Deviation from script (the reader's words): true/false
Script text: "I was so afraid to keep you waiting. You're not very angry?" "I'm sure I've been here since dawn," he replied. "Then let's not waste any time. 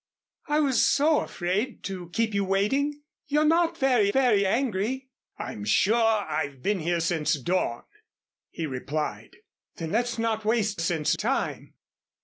true